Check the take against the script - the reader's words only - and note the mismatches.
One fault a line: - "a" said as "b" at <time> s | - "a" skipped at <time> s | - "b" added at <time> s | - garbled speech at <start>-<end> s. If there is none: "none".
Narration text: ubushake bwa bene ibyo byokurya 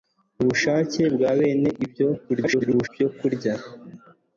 - garbled speech at 2.3-2.9 s